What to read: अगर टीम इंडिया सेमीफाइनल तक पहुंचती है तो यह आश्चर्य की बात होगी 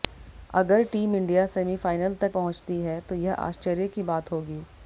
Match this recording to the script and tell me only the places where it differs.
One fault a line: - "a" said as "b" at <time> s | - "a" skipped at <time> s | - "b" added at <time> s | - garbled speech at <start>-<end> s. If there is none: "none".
none